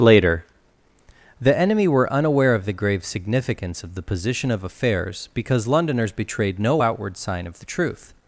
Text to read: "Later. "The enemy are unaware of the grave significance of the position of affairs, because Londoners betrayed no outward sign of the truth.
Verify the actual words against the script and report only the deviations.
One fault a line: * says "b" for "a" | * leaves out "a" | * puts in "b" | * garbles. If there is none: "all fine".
* says "were" for "are"